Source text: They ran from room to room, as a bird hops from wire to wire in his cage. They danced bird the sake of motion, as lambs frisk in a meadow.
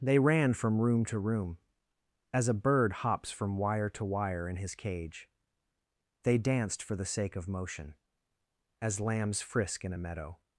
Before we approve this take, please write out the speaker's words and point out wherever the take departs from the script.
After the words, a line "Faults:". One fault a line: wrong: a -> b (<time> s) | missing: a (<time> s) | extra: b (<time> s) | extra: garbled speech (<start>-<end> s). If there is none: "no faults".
They ran from room to room, as a bird hops from wire to wire in his cage. They danced for the sake of motion, as lambs frisk in a meadow.
Faults:
wrong: bird -> for (6.8 s)